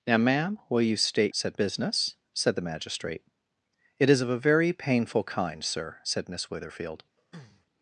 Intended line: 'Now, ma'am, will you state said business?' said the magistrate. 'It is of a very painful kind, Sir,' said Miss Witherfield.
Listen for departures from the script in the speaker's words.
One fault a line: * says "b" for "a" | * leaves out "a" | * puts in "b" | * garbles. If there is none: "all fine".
all fine